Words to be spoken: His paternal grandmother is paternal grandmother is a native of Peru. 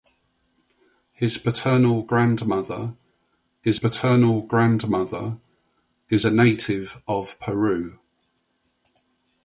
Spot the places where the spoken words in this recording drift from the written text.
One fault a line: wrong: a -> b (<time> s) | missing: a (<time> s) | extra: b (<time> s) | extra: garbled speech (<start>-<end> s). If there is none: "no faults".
no faults